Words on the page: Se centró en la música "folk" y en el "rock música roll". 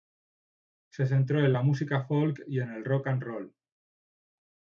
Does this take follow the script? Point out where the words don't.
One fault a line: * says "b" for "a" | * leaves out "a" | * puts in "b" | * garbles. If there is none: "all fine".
* says "and" for "música"